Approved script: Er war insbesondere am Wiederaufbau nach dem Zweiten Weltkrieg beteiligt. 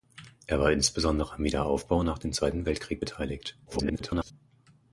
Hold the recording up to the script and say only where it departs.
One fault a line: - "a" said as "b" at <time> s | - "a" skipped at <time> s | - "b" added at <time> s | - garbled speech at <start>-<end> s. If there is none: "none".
- garbled speech at 3.7-4.3 s